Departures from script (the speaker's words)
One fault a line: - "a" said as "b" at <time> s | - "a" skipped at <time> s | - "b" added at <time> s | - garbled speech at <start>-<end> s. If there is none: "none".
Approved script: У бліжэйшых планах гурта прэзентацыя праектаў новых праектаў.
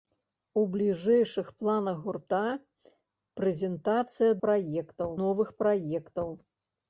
none